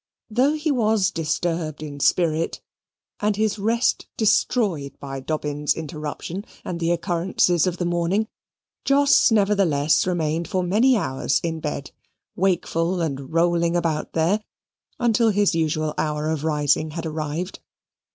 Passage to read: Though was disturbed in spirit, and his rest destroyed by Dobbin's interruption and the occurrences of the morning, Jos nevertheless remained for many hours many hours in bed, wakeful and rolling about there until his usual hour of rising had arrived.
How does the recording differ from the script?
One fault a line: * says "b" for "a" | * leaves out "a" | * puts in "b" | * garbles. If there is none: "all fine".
* puts in "he"
* leaves out "many hours"